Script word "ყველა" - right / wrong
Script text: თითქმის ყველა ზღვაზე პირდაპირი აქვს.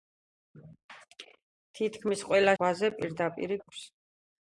right